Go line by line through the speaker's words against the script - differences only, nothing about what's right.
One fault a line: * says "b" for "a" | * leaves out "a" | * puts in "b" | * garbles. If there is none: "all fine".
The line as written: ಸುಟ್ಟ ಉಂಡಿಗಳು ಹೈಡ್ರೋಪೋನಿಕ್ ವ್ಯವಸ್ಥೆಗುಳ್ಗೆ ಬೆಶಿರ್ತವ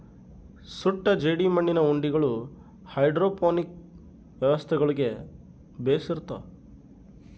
* puts in "ಜೇಡಿಮಣ್ಣಿನ"